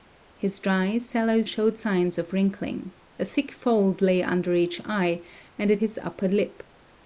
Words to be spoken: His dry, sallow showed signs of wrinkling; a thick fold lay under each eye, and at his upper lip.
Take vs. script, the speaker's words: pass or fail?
pass